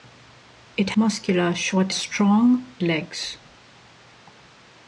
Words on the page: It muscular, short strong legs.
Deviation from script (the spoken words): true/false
false